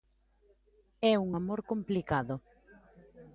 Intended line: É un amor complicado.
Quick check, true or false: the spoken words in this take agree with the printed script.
true